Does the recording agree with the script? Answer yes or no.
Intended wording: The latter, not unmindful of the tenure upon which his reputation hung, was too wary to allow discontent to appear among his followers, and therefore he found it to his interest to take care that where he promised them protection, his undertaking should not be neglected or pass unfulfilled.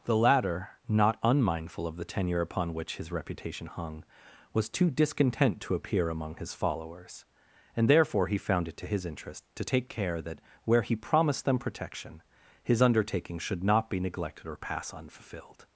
no